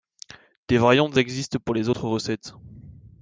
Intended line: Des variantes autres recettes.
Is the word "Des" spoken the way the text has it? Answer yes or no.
yes